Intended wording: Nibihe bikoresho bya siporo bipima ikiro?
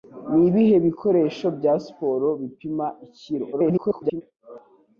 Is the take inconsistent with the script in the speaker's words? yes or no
yes